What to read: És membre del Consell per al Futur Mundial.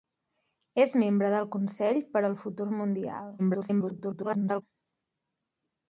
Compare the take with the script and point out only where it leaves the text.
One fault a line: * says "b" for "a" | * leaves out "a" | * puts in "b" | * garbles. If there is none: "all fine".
* garbles